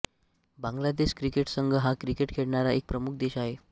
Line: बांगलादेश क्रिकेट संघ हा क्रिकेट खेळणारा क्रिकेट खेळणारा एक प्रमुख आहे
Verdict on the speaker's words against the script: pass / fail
fail